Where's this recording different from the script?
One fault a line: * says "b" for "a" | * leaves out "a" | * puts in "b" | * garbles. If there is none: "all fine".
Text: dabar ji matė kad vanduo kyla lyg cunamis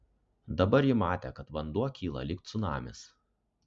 all fine